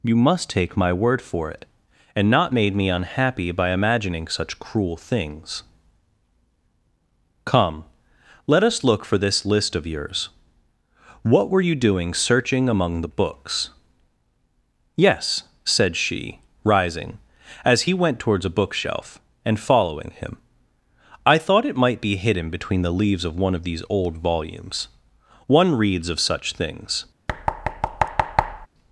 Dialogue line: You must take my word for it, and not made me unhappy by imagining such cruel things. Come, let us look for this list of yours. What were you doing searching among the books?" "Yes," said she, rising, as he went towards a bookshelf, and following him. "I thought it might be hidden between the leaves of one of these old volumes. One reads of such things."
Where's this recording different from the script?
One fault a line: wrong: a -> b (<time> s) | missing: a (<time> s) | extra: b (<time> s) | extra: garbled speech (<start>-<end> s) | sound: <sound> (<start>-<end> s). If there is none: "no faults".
sound: thud (27.3-28.7 s)